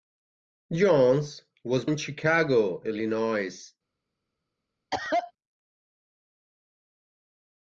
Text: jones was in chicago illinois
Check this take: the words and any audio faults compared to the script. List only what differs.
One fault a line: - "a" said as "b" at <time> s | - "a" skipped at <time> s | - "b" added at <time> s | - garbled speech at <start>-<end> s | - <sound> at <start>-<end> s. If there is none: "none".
- cough at 4.9-5.3 s